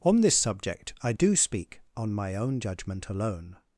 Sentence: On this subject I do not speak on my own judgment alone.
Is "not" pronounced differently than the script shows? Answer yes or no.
yes